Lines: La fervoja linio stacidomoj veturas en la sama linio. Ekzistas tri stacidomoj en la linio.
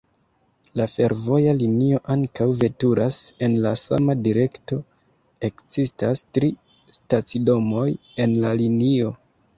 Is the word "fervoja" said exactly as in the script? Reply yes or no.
yes